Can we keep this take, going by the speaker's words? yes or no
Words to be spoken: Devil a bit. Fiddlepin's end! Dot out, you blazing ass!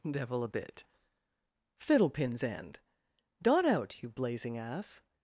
yes